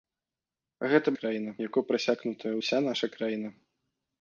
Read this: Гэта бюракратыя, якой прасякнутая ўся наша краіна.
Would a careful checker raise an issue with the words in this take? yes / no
yes